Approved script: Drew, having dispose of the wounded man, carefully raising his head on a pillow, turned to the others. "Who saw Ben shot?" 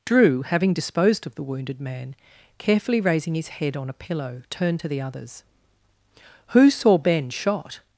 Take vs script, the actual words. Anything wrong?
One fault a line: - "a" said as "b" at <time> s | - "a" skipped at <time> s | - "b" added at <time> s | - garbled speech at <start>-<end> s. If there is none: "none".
- "dispose" said as "disposed" at 0.7 s